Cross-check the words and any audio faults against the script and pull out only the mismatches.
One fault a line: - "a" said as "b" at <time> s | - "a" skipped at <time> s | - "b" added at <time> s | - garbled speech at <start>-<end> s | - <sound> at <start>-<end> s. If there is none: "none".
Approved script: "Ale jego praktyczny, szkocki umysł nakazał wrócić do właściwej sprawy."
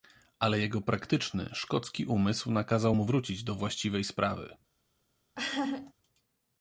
- "mu" added at 2.9 s
- laugh at 5.4-5.9 s